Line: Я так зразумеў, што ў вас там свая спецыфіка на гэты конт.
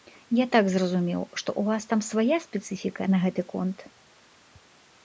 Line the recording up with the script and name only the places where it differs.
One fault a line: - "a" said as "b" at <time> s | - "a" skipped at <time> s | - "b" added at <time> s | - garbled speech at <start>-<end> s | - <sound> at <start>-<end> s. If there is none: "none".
none